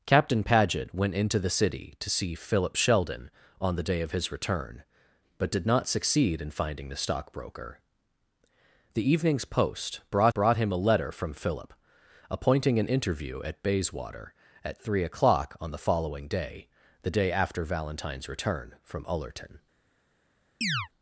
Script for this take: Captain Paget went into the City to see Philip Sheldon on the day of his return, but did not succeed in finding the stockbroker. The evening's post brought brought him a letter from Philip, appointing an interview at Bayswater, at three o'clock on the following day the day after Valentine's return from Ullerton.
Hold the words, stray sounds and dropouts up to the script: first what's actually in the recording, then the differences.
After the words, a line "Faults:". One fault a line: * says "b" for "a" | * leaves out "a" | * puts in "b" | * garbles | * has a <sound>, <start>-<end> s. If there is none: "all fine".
Captain Paget went into the City to see Philip Sheldon on the day of his return, but did not succeed in finding the stockbroker. The evening's post brought brought him a letter from Philip, appointing an interview at Bayswater, at three o'clock on the following day the day after Valentine's return from Ullerton.
Faults:
* has a chirp, 20.6-20.9 s